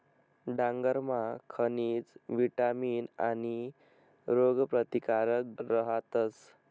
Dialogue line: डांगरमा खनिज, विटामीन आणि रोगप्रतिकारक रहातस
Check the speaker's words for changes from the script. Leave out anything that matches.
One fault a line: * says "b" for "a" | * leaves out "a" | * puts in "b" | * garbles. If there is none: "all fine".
all fine